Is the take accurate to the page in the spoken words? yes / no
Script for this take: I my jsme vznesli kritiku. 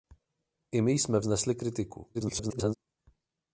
no